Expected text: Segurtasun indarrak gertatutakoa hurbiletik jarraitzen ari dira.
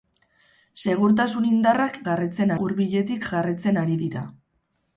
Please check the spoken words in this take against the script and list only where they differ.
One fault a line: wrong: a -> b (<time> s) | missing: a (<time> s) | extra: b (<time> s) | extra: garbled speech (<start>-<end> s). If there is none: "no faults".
wrong: gertatutakoa -> jarraitzen (2.1 s)